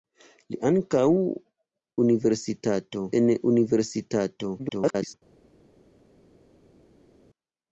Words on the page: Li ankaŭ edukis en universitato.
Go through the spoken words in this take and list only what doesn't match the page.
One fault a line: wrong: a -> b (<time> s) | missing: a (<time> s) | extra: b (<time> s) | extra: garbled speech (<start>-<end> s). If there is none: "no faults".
wrong: edukis -> universitato (2.1 s)
extra: garbled speech (4.6-5.1 s)